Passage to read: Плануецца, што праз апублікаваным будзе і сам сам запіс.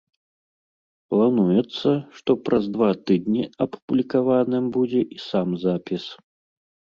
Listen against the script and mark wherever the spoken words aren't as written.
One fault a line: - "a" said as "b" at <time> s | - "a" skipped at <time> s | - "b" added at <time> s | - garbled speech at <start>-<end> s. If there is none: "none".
- "два тыдні" added at 2.7 s
- "сам" skipped at 5.5 s